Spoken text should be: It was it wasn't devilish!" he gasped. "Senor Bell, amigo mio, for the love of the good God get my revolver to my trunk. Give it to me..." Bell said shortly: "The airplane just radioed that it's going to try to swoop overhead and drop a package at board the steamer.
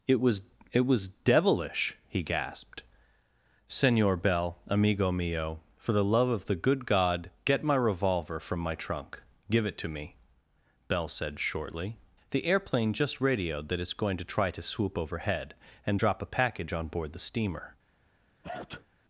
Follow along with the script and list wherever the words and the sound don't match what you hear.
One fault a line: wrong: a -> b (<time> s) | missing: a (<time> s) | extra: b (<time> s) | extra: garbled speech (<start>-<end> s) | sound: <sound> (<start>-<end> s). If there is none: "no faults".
wrong: wasn't -> was (0.9 s)
wrong: to -> from (8.4 s)
wrong: at -> on (16.7 s)
sound: sneeze (18.4-18.9 s)